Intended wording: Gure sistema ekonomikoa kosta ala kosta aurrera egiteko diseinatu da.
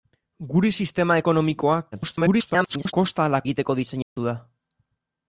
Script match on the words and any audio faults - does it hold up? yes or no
no